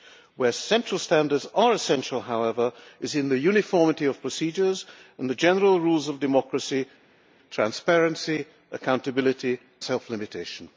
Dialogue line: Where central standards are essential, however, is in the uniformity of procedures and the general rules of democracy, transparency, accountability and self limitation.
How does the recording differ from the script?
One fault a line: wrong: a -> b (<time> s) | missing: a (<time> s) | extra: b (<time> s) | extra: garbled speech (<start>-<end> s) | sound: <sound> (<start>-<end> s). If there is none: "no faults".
missing: and (9.6 s)